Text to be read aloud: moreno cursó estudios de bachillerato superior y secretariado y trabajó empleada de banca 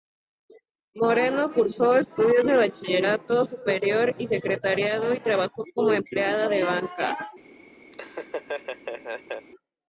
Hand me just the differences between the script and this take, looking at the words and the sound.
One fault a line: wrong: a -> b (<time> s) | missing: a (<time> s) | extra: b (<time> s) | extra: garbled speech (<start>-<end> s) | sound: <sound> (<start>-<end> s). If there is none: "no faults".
extra: como (5.8 s)
sound: laugh (7.9-9.5 s)